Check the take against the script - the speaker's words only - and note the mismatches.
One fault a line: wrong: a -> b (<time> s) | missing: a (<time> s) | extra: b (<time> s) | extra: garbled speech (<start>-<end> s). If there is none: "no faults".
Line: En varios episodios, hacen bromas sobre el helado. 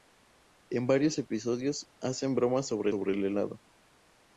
extra: sobre (2.9 s)